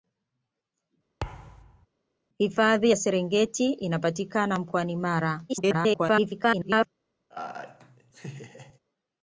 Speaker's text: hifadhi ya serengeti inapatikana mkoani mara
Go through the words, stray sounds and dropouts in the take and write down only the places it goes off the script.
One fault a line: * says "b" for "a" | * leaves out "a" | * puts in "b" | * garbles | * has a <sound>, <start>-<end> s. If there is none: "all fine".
* has a thud, 1.2-1.9 s
* garbles
* has a laugh, 7.3-8.8 s